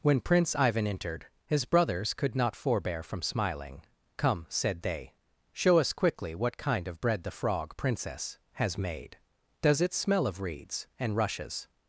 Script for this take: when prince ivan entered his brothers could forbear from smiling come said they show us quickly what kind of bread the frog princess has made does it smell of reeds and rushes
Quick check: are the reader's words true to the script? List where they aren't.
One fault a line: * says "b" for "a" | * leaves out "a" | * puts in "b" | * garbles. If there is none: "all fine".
* puts in "not"